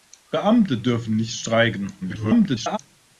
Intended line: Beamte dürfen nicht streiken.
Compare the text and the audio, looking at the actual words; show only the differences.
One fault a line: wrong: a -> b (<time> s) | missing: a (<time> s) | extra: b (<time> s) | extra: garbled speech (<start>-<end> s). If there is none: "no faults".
extra: garbled speech (2.0-2.8 s)